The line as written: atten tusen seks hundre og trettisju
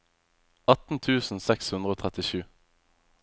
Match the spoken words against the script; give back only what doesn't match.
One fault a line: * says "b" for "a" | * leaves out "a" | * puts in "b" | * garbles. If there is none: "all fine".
all fine